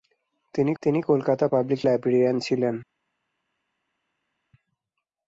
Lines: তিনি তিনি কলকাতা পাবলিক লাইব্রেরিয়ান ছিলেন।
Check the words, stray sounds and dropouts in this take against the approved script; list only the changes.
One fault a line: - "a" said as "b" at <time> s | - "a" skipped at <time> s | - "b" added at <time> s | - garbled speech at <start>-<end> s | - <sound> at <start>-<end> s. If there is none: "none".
none